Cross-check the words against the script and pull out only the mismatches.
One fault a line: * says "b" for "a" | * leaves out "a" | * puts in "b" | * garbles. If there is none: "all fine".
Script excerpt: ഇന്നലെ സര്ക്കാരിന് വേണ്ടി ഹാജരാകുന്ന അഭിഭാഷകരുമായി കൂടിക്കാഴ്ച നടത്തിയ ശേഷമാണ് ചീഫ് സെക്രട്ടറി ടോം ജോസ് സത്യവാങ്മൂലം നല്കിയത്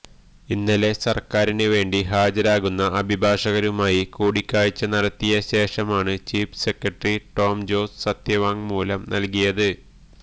all fine